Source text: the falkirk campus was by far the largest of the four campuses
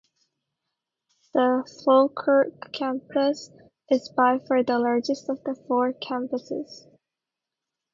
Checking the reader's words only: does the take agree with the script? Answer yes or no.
no